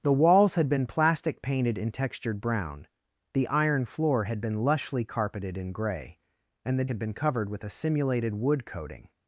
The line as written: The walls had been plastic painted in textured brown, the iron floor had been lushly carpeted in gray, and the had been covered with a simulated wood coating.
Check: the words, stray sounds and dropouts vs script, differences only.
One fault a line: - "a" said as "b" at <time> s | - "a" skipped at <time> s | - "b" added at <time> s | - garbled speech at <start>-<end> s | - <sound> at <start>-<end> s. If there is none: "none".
none